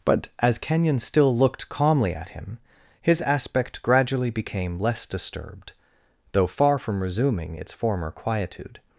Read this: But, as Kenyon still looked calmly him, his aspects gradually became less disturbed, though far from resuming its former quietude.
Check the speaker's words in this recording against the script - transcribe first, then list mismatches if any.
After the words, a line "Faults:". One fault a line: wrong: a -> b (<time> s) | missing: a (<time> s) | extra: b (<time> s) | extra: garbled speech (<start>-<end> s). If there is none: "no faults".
But, as Kenyon still looked calmly at him, his aspect gradually became less disturbed, though far from resuming its former quietude.
Faults:
extra: at (2.1 s)
wrong: aspects -> aspect (3.2 s)